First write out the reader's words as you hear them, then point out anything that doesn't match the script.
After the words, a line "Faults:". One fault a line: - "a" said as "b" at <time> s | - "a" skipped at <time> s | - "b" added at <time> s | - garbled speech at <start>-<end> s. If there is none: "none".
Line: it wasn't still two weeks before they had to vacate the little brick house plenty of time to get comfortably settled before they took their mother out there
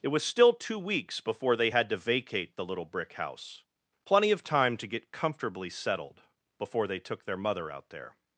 it was still two weeks before they had to vacate the little brick house plenty of time to get comfortably settled before they took their mother out there
Faults:
- "wasn't" said as "was" at 0.1 s